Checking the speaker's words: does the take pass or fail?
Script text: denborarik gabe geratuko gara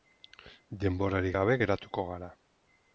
pass